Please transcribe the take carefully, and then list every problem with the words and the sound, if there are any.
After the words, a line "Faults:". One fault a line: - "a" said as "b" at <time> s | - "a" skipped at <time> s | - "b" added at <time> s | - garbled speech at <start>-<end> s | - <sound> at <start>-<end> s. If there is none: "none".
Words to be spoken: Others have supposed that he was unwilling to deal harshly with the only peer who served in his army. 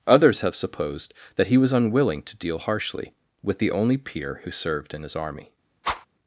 Others have supposed that he was unwilling to deal harshly with the only peer who served in his army.
Faults:
- whoosh at 5.8-6.1 s